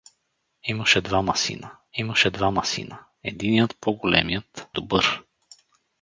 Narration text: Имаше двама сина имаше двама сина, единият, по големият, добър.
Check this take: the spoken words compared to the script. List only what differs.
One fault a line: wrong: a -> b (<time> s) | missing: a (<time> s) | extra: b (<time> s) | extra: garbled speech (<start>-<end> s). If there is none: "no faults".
no faults